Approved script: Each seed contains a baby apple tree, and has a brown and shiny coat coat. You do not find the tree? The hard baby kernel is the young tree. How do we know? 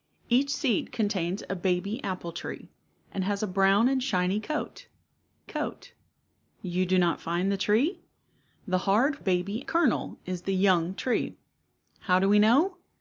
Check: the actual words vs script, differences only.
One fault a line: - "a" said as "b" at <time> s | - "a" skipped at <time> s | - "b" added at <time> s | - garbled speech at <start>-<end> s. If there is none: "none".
none